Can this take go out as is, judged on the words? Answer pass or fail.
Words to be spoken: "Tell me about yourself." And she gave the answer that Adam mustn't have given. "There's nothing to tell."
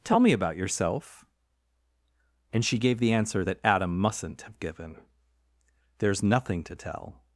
pass